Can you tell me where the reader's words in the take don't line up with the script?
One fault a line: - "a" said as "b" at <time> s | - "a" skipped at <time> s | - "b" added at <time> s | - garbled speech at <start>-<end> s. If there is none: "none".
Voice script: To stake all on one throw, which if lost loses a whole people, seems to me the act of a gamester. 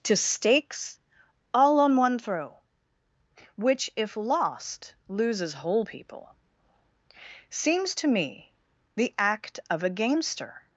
- "stake" said as "stakes" at 0.1 s
- "a" skipped at 5.5 s